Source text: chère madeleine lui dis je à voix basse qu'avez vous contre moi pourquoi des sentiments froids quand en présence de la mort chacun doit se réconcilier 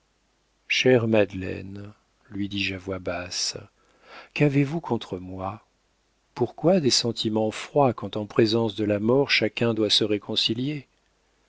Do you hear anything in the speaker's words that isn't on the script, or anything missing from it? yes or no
no